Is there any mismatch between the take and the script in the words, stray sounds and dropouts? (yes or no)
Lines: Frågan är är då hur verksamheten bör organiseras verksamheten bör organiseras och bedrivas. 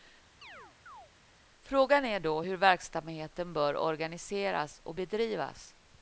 yes